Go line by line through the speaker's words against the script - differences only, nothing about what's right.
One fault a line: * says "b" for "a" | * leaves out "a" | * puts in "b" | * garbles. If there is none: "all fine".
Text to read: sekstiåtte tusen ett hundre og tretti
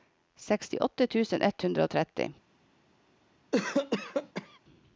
all fine